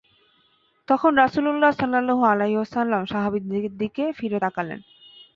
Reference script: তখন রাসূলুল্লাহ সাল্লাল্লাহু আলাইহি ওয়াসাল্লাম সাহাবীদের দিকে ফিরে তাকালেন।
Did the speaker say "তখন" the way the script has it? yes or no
yes